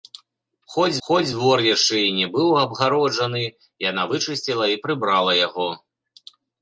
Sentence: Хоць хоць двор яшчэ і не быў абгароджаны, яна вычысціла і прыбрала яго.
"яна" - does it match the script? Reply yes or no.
yes